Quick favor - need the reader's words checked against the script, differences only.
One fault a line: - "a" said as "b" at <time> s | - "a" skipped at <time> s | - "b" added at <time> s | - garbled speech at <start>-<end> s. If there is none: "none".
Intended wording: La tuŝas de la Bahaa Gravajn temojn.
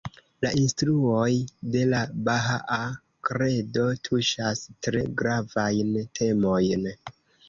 - "tuŝas" said as "instruoj" at 0.6 s
- "Kredo tuŝas tre" added at 3.3 s